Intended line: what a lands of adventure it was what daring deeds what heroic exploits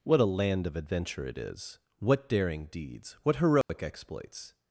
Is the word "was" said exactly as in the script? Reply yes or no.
no